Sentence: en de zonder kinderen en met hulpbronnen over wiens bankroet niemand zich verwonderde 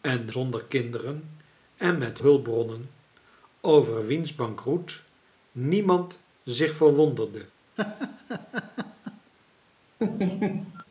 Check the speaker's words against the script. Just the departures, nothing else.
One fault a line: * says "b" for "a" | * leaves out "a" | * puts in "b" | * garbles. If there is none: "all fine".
all fine